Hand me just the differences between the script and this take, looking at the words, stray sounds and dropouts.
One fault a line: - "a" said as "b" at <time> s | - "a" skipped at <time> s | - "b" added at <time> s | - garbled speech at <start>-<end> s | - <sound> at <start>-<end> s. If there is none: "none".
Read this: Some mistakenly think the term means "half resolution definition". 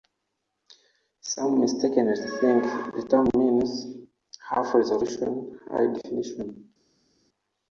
- "high" added at 5.7 s